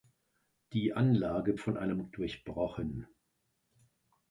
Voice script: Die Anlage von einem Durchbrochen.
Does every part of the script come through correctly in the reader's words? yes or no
yes